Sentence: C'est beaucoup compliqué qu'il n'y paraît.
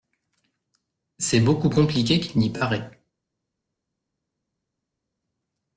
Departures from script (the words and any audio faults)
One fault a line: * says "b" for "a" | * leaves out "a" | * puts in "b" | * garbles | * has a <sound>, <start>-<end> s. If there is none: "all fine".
all fine